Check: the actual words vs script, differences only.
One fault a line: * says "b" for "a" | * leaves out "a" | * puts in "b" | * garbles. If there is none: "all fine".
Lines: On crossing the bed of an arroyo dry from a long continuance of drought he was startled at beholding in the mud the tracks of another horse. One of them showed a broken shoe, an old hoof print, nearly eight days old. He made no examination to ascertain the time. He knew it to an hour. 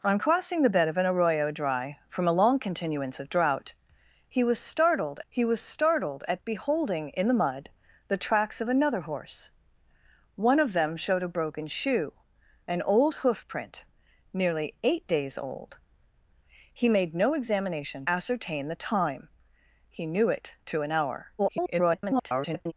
* puts in "he was startled"
* leaves out "to"
* garbles